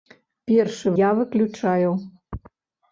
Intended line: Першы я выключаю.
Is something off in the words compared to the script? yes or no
no